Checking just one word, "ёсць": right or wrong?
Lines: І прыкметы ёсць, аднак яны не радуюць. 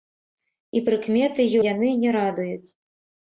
wrong